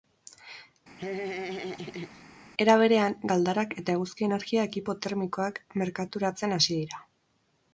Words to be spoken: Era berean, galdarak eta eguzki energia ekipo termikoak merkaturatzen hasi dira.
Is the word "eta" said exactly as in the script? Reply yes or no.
yes